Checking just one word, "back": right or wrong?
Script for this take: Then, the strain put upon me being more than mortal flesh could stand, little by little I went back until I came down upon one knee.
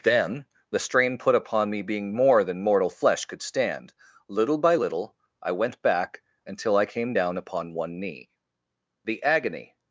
right